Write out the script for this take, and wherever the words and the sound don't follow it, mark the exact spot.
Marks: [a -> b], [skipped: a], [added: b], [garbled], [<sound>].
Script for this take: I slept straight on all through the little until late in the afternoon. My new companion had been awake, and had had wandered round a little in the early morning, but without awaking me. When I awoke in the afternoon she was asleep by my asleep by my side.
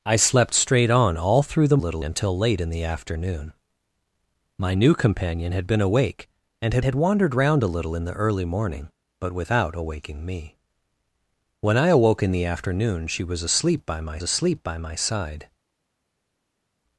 I slept straight on all through the little until late in the afternoon. My new companion had been awake, and had had wandered round a little in the early morning, but without awaking me. When I awoke in the afternoon she was asleep by my asleep by my side.